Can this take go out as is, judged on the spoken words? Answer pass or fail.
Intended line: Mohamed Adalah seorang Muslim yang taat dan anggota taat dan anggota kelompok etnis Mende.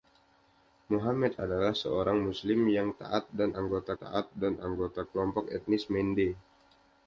pass